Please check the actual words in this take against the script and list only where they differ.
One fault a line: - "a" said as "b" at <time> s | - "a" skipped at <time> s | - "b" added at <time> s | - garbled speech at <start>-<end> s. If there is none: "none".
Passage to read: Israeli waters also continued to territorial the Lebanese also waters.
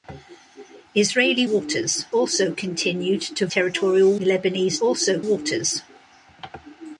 none